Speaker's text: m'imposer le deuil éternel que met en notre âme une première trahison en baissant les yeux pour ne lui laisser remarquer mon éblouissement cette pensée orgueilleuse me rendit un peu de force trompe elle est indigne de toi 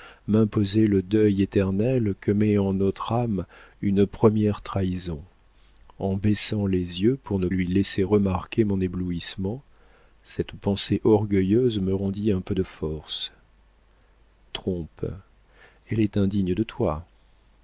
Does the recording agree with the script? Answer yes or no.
yes